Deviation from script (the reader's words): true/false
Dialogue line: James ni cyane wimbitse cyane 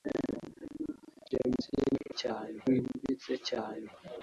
false